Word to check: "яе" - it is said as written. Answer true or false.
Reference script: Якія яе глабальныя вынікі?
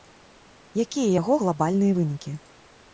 false